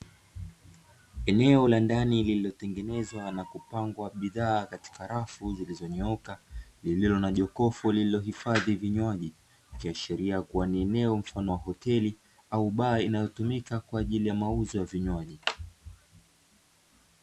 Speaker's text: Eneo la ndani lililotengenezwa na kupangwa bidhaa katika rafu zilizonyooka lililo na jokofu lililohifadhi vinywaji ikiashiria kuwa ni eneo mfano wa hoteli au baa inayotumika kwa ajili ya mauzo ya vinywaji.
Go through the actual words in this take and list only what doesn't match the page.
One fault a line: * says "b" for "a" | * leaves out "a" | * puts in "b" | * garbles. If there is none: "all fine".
all fine